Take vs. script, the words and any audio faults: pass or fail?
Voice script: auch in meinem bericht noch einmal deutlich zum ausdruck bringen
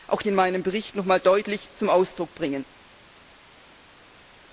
pass